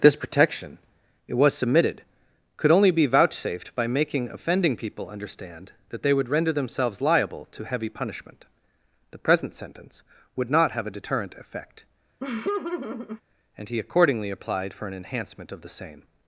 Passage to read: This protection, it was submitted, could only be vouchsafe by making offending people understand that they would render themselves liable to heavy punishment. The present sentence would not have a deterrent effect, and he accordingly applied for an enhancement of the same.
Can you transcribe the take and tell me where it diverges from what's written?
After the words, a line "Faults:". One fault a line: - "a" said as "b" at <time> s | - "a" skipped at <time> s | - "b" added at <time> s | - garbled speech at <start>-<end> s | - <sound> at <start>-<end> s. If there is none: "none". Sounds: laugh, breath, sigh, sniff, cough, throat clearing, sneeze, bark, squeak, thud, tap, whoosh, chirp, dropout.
This protection, it was submitted, could only be vouchsafed by making offending people understand that they would render themselves liable to heavy punishment. The present sentence would not have a deterrent effect, and he accordingly applied for an enhancement of the same.
Faults:
- "vouchsafe" said as "vouchsafed" at 3.0 s
- laugh at 12.2-13.2 s